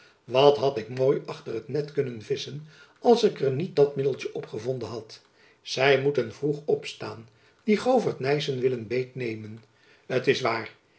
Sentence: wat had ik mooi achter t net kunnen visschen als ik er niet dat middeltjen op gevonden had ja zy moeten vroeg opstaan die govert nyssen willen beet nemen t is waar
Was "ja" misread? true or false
true